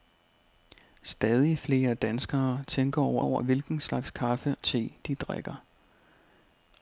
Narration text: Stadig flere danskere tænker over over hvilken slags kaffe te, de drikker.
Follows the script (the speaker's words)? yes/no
yes